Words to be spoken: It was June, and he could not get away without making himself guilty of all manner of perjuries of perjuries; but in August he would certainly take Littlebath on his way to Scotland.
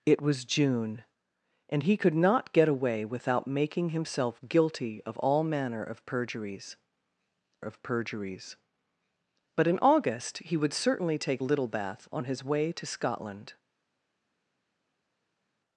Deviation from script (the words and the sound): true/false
false